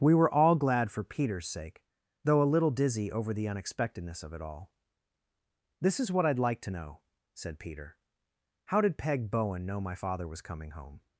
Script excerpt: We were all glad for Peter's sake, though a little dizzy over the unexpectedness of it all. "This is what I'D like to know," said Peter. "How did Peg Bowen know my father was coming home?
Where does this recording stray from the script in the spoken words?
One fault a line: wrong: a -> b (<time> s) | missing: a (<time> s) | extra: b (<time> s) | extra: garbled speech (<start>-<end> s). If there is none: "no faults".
no faults